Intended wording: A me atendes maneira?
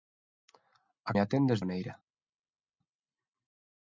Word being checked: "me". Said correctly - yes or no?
yes